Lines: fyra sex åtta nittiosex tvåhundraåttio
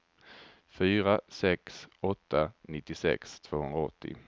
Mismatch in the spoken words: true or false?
false